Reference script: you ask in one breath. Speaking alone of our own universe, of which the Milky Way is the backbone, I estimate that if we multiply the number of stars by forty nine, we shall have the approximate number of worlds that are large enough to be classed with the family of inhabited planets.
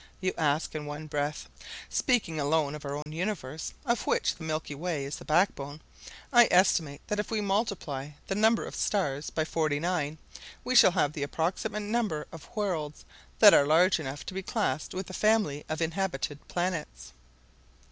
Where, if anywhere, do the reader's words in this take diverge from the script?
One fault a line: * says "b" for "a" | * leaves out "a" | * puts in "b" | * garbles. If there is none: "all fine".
all fine